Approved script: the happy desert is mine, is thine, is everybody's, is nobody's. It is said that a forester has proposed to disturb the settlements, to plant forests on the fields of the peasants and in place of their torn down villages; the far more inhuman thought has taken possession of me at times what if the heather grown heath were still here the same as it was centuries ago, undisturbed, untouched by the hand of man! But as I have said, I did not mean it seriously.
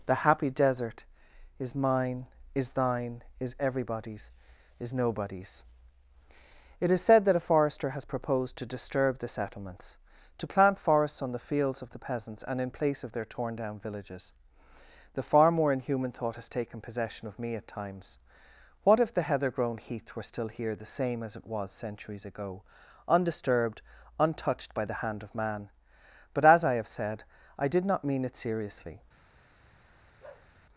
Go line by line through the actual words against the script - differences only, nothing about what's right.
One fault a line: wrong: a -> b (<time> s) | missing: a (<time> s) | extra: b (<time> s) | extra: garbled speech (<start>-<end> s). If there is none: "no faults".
no faults